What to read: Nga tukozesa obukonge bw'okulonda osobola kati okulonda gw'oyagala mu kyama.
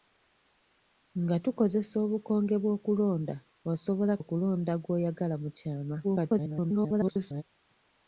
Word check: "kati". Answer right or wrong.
wrong